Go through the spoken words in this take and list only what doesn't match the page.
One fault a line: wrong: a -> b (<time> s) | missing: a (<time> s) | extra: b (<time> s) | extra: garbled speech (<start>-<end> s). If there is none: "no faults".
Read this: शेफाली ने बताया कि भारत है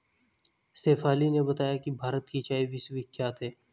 extra: की चाय विश्वविख्यात (2.3 s)